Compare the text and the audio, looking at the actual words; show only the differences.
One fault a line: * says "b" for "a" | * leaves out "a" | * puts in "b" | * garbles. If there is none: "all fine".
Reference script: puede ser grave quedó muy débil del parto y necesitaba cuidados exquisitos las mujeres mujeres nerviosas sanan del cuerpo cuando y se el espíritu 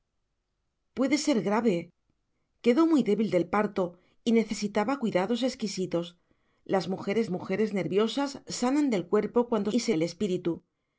all fine